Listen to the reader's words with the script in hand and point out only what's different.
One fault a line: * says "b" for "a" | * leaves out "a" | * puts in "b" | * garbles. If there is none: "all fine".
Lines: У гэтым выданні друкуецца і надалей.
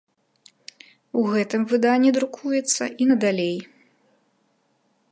all fine